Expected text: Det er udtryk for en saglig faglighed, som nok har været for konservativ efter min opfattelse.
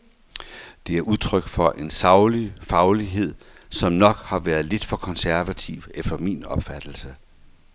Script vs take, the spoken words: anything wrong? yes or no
yes